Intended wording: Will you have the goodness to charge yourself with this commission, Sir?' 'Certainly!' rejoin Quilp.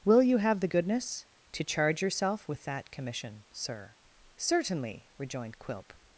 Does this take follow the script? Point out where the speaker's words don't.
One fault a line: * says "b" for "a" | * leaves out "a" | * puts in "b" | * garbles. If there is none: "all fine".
* says "that" for "this"
* says "rejoined" for "rejoin"